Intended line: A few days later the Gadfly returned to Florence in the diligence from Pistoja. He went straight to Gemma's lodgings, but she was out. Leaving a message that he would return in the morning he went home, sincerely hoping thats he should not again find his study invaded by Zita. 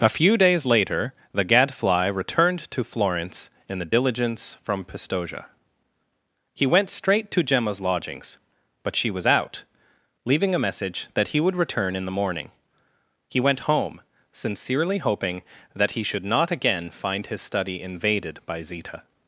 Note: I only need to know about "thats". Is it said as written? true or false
false